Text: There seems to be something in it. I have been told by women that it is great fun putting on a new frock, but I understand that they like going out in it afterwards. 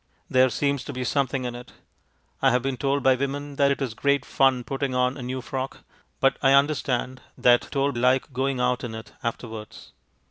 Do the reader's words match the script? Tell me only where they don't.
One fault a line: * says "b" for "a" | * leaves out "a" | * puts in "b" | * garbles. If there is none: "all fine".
* says "told" for "they"